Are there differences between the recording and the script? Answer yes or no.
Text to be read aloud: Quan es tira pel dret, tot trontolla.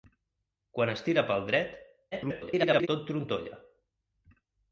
yes